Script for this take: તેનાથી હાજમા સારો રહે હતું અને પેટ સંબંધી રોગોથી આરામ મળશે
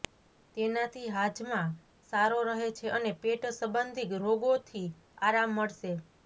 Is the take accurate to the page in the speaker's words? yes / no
no